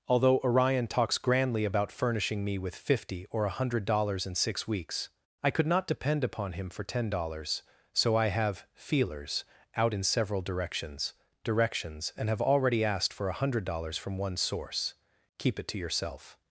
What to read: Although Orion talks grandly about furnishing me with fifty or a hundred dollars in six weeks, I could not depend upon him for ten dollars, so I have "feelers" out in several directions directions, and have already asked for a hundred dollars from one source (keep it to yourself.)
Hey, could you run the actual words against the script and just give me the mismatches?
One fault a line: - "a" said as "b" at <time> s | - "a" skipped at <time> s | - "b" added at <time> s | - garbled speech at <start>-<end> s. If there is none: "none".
none